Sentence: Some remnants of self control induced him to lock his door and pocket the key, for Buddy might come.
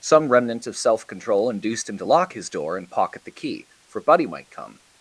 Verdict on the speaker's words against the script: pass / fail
fail